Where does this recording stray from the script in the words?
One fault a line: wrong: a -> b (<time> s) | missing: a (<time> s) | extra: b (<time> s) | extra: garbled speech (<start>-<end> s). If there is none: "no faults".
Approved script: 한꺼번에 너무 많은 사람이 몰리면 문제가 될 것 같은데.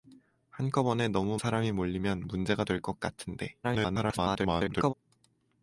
missing: 많은 (1.4 s)
extra: garbled speech (3.6-4.9 s)